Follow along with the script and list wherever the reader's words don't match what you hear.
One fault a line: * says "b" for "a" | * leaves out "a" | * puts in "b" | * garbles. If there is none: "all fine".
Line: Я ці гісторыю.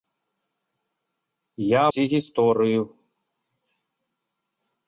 all fine